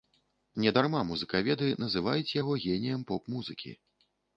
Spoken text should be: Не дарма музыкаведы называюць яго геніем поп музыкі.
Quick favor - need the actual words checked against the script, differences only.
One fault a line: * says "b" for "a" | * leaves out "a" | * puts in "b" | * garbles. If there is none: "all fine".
all fine